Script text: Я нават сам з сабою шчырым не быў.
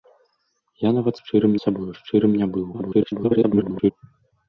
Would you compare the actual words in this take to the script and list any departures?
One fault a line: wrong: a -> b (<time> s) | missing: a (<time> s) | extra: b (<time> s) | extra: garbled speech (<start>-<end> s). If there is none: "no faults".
wrong: сам -> шчырым (1.2 s)
extra: garbled speech (2.7-3.9 s)